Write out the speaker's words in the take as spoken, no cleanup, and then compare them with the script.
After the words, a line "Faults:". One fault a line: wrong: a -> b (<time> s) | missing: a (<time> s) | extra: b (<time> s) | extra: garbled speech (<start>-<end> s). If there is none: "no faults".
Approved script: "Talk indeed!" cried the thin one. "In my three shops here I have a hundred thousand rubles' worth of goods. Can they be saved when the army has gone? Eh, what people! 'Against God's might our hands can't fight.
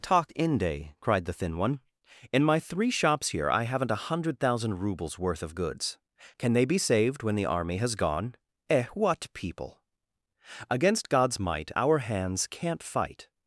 "Talk inde!" cried the thin one. "In my three shops here I haven't a hundred thousand rubles' worth of goods. Can they be saved when the army has gone? Eh, what people! 'Against God's might our hands can't fight.
Faults:
wrong: indeed -> inde (0.3 s)
wrong: have -> haven't (3.6 s)